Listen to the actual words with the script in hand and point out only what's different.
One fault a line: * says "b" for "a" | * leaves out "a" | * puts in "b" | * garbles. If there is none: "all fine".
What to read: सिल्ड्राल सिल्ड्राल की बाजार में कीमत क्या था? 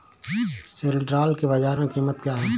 * leaves out "सिल्ड्राल"
* says "है" for "था"